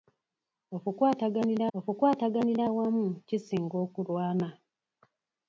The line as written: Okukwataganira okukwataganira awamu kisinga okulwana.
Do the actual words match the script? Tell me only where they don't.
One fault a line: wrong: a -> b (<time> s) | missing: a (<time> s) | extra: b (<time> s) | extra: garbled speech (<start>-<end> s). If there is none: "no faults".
no faults